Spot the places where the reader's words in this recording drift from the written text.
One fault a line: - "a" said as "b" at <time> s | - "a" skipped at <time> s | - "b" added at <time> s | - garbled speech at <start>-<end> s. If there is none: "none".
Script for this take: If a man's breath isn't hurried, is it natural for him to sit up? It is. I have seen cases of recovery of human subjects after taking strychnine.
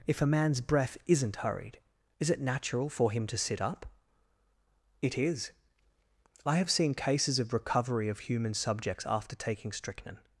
none